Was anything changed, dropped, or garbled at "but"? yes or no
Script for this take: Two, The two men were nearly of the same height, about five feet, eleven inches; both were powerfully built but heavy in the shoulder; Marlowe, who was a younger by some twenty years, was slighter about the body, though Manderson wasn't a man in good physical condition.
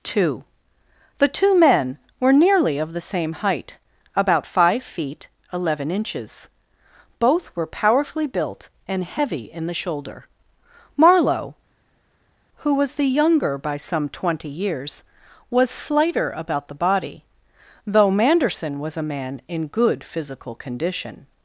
yes